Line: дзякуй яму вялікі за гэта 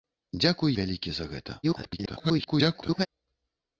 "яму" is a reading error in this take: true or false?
true